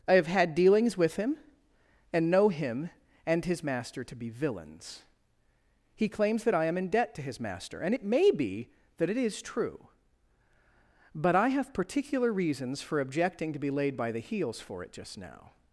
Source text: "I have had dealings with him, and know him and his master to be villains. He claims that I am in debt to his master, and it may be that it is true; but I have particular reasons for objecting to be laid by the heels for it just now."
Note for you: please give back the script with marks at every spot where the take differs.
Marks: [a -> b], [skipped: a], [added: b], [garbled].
"I have had dealings with him, and know him and his master to be villains. He claims that I am in debt to his master, and it may be that it is true; but I have particular reasons for objecting to be laid by the heels for it just now."